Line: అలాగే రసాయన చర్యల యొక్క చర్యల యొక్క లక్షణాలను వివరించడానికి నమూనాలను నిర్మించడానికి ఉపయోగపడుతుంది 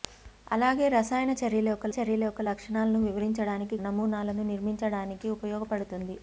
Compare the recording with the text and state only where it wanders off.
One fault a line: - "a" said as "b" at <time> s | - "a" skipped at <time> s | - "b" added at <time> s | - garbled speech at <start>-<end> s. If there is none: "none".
none